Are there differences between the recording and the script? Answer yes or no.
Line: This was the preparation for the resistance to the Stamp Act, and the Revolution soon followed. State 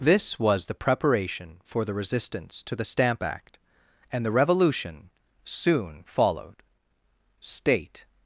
no